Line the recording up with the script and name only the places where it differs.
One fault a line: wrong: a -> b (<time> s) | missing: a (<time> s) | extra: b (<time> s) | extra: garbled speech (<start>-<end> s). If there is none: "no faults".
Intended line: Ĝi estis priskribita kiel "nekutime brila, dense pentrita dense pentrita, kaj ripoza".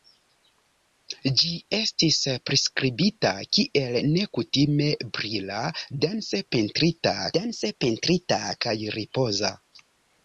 no faults